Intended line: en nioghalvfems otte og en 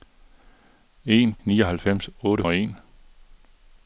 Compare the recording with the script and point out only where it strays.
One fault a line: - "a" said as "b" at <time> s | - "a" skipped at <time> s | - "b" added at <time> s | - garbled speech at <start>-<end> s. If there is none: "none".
none